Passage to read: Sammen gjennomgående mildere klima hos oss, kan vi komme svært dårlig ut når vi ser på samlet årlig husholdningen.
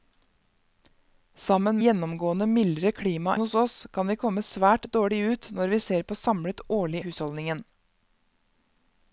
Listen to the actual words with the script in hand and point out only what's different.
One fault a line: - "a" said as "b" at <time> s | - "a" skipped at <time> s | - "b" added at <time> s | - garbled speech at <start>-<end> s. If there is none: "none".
none